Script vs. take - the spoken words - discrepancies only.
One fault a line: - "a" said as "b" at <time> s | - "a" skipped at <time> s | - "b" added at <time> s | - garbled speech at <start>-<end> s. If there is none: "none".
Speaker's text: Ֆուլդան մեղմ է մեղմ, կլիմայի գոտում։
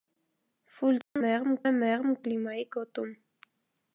none